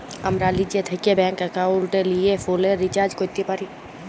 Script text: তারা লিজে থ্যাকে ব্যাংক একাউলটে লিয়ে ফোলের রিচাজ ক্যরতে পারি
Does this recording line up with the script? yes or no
no